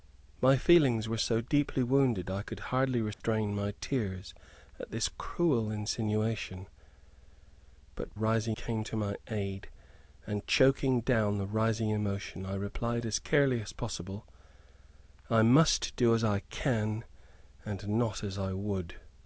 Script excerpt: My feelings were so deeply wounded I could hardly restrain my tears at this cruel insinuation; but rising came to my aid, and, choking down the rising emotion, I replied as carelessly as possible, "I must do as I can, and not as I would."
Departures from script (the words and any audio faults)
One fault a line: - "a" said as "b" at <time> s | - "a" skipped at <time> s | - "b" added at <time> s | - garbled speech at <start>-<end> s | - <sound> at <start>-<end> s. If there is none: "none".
- dropout at 3.1-3.2 s